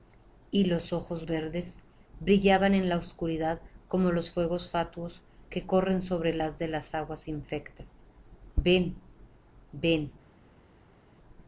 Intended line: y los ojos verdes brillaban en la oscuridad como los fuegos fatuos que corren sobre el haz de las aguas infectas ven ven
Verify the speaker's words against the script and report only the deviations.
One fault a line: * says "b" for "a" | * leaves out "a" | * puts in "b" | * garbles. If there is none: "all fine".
all fine